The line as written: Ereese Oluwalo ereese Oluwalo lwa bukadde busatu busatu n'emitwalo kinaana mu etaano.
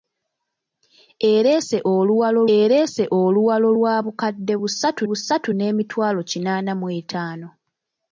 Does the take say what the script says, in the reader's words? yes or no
yes